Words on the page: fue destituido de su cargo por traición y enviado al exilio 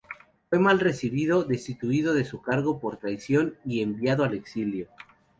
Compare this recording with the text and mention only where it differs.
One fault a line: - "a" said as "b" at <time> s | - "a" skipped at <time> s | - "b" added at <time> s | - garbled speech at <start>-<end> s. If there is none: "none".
- "mal recibido" added at 0.6 s